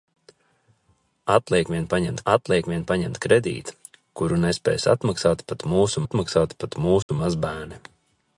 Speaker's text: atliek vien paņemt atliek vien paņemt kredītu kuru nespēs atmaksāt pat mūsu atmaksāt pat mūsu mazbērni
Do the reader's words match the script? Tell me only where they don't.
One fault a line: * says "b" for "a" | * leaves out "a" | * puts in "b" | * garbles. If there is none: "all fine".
all fine